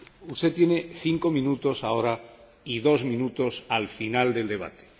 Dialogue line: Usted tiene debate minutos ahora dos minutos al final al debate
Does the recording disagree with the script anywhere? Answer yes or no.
yes